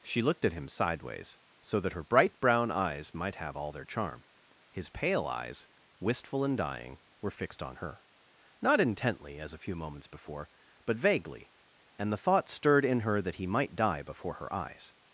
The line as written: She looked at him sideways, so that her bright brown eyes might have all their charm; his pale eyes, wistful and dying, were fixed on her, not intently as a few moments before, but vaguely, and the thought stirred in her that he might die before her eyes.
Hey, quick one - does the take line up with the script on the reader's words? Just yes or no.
yes